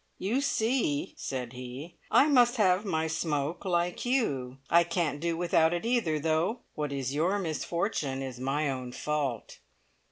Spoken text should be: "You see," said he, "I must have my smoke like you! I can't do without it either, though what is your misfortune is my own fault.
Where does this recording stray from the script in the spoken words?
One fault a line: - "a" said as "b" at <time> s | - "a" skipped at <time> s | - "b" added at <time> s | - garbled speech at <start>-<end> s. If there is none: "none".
none